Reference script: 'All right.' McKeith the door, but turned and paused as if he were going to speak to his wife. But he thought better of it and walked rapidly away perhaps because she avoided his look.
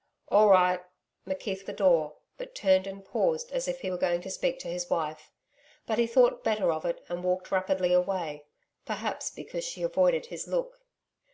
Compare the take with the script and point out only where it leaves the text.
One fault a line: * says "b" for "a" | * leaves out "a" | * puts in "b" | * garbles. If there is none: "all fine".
all fine